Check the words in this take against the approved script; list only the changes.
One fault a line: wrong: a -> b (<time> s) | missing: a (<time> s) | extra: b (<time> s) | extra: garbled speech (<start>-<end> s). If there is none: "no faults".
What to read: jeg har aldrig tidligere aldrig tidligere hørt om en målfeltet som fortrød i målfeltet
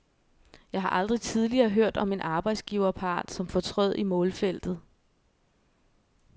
missing: aldrig tidligere (1.7 s)
wrong: målfeltet -> arbejdsgiverpart (2.2 s)